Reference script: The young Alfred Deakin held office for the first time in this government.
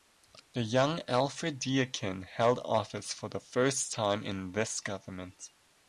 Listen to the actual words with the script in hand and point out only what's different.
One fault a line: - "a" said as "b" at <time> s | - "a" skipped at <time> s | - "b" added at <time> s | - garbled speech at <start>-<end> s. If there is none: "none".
none